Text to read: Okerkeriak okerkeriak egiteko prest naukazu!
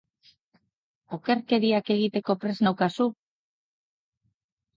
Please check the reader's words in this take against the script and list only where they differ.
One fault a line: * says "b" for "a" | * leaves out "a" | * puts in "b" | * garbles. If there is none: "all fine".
* leaves out "okerkeriak"